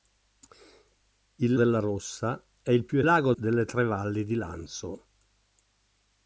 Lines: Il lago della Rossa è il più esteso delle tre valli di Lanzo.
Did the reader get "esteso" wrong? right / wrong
wrong